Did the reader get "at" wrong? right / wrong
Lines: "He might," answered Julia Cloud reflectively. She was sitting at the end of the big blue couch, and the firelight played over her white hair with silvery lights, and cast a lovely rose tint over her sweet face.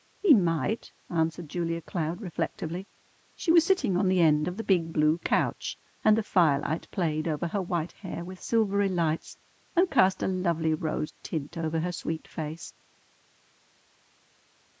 wrong